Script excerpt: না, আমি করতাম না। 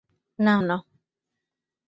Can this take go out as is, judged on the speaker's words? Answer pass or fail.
fail